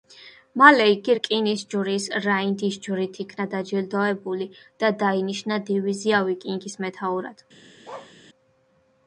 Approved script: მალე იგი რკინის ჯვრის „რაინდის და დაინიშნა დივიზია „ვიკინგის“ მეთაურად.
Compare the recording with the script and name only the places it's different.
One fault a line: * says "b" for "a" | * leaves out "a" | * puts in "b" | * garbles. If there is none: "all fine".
* puts in "ჯვრით იქნა დაჯილდოებული"